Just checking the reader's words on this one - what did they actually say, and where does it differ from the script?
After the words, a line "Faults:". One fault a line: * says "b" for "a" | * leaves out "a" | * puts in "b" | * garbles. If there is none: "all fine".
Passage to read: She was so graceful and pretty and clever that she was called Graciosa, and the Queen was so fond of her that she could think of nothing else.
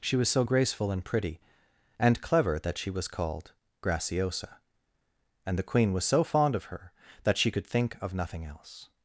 She was so graceful and pretty and clever that she was called Graciosa, and the Queen was so fond of her that she could think of nothing else.
Faults:
all fine